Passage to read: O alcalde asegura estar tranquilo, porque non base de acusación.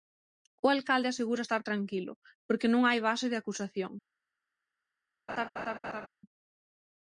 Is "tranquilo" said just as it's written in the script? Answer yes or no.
yes